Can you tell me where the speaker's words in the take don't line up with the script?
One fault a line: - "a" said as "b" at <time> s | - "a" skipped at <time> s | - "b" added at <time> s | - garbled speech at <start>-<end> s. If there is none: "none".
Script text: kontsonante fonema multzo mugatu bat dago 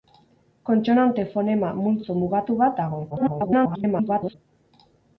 - garbled speech at 3.1-4.4 s